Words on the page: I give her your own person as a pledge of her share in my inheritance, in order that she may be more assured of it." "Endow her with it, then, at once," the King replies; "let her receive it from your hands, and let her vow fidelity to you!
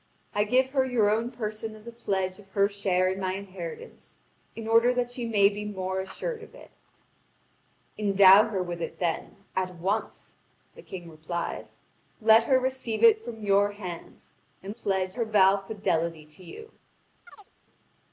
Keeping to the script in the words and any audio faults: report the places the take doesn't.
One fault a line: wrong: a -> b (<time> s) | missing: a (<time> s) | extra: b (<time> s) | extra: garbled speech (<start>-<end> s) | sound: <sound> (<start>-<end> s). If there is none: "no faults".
wrong: let -> pledge (14.7 s)
sound: chirp (17.3-17.5 s)